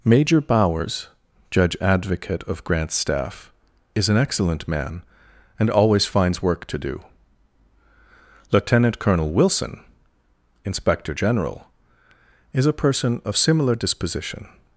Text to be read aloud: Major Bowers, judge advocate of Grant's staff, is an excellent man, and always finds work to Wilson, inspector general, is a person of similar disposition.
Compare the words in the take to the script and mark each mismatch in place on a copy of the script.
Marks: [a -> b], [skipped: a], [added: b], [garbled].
Major Bowers, judge advocate of Grant's staff, is an excellent man, and always finds work to [added: do Lieutenant Colonel] Wilson, inspector general, is a person of similar disposition.